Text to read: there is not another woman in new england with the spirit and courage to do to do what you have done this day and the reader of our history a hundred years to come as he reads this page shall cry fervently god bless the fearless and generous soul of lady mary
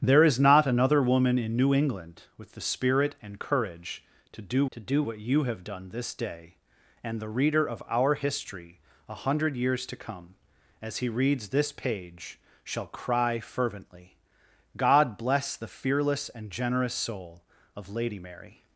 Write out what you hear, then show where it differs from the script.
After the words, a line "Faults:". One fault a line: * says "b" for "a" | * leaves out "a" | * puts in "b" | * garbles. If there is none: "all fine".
there is not another woman in new england with the spirit and courage to do to do what you have done this day and the reader of our history a hundred years to come as he reads this page shall cry fervently god bless the fearless and generous soul of lady mary
Faults:
all fine